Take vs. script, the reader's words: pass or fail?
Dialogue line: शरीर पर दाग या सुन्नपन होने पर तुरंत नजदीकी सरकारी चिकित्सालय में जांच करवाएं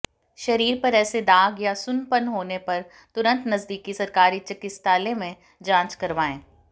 fail